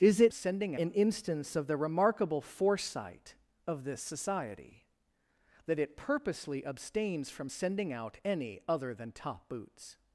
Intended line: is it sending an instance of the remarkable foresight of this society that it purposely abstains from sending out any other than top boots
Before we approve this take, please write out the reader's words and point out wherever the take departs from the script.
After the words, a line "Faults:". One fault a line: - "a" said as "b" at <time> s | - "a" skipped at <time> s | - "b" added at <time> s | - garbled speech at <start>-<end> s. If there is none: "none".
is it sending an instance of the remarkable foresight of this society that it purposely abstains from sending out any other than top boots
Faults:
none